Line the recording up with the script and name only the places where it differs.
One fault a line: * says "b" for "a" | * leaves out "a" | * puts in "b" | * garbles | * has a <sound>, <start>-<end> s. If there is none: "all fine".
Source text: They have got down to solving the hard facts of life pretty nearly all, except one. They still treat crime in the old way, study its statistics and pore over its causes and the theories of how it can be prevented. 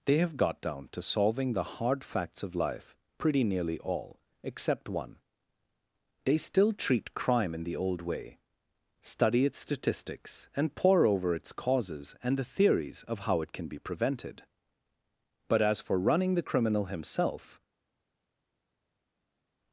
* puts in "But as for running the criminal himself"